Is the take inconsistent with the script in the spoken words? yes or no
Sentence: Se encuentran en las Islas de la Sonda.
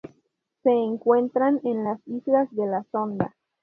no